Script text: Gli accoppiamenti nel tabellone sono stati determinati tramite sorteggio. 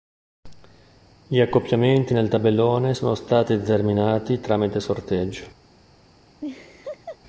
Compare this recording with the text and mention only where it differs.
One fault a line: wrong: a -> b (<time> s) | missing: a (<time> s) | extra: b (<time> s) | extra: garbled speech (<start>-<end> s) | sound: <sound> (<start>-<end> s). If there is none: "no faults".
sound: laugh (6.4-7.2 s)